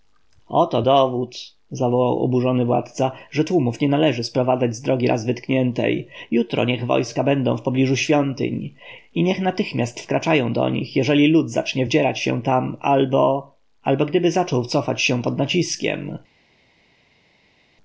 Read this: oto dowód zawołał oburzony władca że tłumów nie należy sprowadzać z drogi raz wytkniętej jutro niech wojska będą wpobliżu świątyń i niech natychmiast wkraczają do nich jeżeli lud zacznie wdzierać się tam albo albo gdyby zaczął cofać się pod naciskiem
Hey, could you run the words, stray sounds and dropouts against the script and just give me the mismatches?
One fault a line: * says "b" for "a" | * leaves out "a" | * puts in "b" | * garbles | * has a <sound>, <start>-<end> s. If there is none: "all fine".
all fine